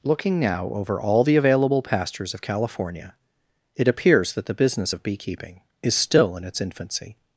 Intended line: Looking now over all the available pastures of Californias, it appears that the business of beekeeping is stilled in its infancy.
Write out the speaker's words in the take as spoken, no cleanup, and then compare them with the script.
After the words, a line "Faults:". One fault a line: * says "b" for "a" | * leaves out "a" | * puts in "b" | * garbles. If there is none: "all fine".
Looking now over all the available pastures of California, it appears that the business of beekeeping is still in its infancy.
Faults:
* says "California" for "Californias"
* says "still" for "stilled"